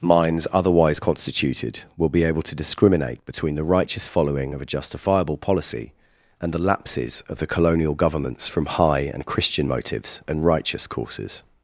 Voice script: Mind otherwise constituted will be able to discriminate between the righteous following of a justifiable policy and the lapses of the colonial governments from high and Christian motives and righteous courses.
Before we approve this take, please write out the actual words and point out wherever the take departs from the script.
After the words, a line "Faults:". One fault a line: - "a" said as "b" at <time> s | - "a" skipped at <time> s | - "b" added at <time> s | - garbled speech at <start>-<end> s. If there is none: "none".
Minds otherwise constituted will be able to discriminate between the righteous following of a justifiable policy and the lapses of the colonial governments from high and Christian motives and righteous courses.
Faults:
- "Mind" said as "Minds" at 0.0 s